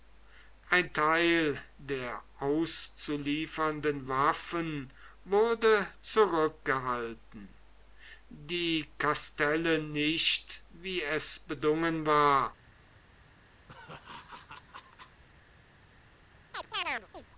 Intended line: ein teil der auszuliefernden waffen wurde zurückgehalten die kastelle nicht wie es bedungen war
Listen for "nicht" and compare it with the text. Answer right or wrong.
right